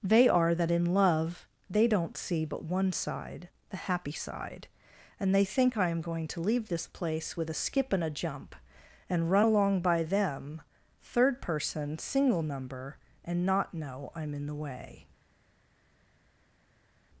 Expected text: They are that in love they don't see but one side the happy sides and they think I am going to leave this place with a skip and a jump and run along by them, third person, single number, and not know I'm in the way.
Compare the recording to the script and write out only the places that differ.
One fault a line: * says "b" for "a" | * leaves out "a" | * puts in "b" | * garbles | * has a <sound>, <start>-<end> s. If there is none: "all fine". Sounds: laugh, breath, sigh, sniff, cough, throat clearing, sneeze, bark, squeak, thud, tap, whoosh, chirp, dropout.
* says "side" for "sides"